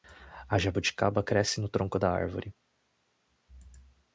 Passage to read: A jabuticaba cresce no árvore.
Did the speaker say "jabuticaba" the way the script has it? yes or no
yes